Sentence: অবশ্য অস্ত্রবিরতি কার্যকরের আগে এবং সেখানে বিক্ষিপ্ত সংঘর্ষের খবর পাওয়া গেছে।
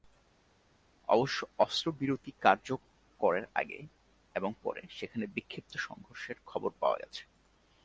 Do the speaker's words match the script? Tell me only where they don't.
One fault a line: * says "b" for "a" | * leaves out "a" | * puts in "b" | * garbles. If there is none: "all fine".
* puts in "পরে"